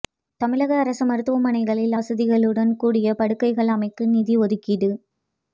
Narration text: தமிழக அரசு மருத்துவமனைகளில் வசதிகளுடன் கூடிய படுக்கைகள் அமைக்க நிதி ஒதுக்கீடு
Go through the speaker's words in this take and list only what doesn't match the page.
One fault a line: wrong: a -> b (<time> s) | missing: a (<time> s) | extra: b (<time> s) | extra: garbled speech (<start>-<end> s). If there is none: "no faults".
no faults